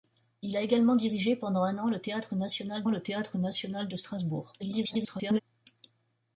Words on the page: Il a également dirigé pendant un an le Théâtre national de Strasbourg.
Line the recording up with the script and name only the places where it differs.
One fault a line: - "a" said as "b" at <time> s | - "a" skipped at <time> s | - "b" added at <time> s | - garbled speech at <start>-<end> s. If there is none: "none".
- "le Théâtre national" added at 2.9 s
- garbled speech at 4.6-5.4 s